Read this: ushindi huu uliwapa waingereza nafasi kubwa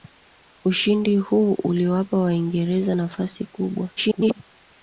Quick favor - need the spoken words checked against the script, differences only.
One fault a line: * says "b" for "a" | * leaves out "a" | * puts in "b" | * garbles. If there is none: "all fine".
* garbles